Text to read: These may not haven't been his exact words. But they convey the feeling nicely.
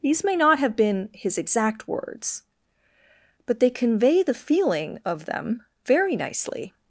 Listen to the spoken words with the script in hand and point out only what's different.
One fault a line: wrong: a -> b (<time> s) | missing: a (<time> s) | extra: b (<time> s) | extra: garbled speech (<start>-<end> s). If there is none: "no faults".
wrong: haven't -> have (0.6 s)
extra: of them very (5.0 s)